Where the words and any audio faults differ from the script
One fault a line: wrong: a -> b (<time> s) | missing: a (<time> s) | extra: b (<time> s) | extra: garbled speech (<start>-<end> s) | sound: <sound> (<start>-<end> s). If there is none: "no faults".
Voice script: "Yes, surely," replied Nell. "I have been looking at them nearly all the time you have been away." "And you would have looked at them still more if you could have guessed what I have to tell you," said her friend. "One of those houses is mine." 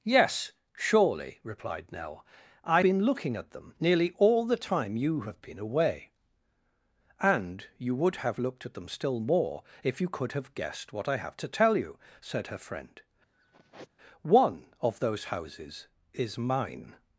missing: have (2.8 s)
sound: sigh (13.3-13.9 s)